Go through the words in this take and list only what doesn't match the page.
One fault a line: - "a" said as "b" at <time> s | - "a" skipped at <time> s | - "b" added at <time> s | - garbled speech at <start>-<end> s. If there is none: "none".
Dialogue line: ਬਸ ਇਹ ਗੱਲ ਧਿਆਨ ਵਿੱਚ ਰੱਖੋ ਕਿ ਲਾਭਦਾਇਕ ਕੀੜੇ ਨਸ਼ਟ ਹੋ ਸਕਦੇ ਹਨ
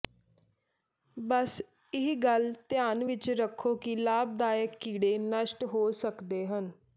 none